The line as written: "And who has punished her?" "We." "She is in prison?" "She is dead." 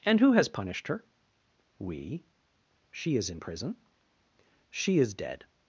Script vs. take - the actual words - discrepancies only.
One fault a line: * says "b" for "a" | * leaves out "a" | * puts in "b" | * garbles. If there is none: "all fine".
all fine